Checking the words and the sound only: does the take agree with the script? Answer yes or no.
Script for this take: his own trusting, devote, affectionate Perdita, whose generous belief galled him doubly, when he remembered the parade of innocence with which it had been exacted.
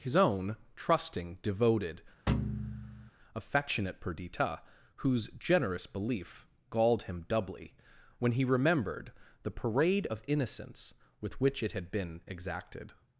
no